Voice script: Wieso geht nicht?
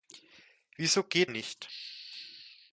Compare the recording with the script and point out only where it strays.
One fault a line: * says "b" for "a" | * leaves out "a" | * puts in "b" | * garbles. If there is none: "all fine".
all fine